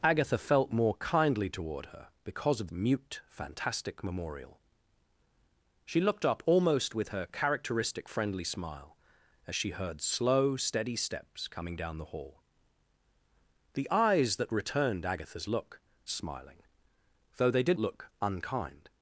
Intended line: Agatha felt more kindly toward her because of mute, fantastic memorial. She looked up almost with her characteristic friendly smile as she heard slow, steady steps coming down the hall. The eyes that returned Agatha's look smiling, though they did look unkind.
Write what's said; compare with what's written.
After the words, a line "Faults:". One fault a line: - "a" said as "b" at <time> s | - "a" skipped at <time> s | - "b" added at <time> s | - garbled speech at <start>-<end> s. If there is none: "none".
Agatha felt more kindly toward her because of mute, fantastic memorial. She looked up almost with her characteristic friendly smile as she heard slow, steady steps coming down the hall. The eyes that returned Agatha's look smiling, though they did look unkind.
Faults:
none